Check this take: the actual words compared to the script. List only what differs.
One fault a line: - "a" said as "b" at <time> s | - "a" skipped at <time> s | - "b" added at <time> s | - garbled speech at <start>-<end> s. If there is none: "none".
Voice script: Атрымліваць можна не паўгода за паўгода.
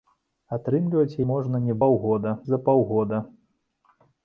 none